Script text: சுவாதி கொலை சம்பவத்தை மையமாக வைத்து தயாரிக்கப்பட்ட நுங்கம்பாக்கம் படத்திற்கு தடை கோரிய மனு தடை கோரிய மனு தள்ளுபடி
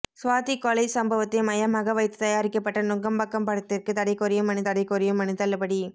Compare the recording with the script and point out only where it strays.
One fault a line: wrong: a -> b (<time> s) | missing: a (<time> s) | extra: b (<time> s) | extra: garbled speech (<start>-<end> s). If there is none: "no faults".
no faults